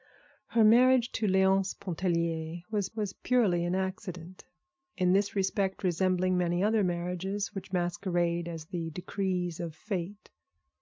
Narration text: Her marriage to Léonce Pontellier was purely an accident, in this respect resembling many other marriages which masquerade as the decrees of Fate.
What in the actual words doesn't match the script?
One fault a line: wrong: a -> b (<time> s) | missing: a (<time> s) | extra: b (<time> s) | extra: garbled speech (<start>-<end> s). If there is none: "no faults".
extra: was (3.0 s)